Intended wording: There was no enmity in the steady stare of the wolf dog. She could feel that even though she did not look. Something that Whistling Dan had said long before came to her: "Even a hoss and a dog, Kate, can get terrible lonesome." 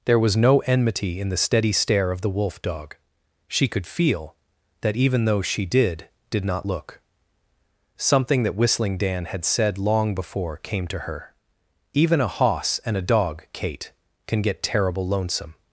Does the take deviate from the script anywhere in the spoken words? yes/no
yes